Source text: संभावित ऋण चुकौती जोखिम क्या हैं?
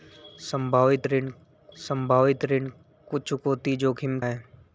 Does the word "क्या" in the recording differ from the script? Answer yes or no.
yes